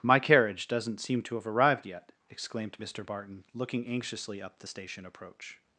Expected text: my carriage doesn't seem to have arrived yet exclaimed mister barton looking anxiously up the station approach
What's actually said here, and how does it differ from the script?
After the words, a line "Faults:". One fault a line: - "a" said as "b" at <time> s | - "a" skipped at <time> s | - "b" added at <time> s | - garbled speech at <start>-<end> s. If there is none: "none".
my carriage doesn't seem to have arrived yet exclaimed mister barton looking anxiously up the station approach
Faults:
none